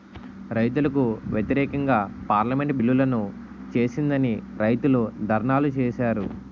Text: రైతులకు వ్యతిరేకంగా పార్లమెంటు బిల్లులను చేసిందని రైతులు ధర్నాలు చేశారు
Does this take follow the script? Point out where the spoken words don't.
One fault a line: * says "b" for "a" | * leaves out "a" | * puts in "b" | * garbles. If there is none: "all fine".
all fine